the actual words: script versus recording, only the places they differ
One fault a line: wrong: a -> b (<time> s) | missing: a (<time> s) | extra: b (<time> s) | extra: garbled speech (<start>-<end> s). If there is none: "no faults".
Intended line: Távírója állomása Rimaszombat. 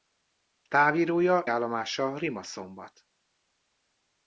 no faults